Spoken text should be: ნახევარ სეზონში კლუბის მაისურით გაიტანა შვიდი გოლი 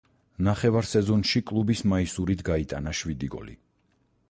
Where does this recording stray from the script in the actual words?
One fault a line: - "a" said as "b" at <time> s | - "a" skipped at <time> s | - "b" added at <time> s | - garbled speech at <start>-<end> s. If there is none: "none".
none